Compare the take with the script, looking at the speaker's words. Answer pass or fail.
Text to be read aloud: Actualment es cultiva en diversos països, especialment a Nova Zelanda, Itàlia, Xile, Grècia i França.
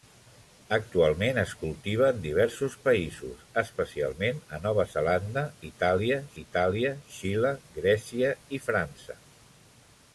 fail